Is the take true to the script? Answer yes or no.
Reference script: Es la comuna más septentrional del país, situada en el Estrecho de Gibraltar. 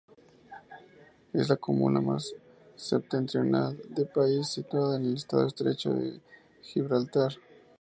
yes